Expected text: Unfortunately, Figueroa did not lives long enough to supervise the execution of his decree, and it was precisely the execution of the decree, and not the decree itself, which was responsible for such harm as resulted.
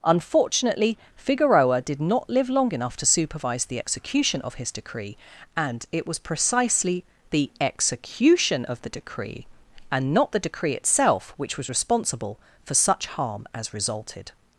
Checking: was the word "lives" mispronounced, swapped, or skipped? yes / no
yes